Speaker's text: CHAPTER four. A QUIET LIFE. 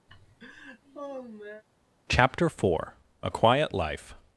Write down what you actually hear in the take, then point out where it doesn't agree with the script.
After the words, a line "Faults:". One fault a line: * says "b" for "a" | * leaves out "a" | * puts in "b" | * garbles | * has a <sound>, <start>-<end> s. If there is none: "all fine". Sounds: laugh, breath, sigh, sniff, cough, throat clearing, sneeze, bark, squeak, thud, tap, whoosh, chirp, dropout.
CHAPTER four. A QUIET LIFE.
Faults:
* has a laugh, 0.1-1.6 s